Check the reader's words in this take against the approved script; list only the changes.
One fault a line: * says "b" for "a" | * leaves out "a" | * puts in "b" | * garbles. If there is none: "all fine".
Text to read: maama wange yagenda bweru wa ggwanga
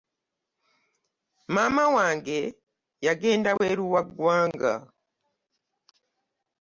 all fine